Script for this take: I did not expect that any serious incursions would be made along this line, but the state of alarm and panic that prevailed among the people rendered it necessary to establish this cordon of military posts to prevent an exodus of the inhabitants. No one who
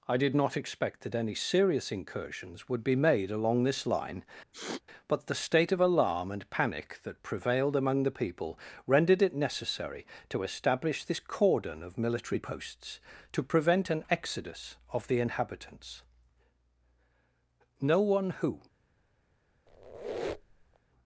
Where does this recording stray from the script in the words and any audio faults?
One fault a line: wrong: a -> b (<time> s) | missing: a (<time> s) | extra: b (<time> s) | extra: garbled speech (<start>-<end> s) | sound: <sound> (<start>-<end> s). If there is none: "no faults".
sound: sniff (4.5-4.8 s)
sound: squeak (19.7-20.8 s)